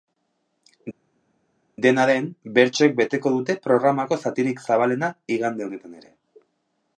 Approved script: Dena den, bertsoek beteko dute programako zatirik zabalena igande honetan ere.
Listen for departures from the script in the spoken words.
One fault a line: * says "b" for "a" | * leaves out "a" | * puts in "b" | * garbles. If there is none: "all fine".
all fine